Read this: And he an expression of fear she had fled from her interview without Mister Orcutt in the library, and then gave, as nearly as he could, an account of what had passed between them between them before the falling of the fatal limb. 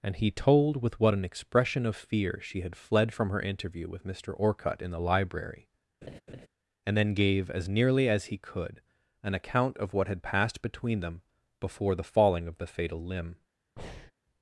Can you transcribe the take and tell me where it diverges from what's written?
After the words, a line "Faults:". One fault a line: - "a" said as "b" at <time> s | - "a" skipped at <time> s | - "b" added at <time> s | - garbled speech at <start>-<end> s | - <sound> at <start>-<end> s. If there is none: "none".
And he told with what an expression of fear she had fled from her interview with Mister Orcutt in the library, and then gave, as nearly as he could, an account of what had passed between them before the falling of the fatal limb.
Faults:
- "told with what" added at 0.3 s
- "without" said as "with" at 3.9 s
- laugh at 6.0-6.5 s
- "between them" skipped at 11.2 s
- breath at 13.8-14.1 s